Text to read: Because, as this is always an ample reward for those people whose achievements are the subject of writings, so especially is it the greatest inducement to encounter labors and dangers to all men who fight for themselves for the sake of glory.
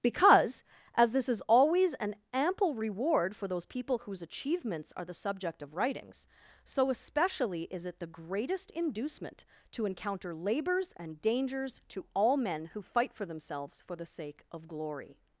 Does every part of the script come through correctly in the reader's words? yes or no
yes